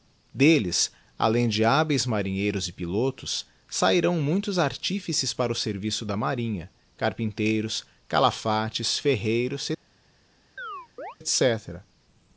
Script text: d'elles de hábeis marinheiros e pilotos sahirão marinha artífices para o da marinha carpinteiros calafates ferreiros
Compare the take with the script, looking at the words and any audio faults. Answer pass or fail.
fail